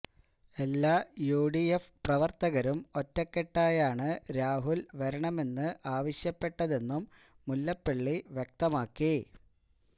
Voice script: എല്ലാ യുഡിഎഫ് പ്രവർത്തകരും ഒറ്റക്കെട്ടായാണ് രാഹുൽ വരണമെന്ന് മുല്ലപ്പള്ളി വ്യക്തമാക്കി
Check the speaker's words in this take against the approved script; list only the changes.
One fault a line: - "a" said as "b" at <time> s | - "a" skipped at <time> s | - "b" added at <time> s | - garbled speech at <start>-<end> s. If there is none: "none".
- "ആവശ്യപ്പെട്ടതെന്നും" added at 6.0 s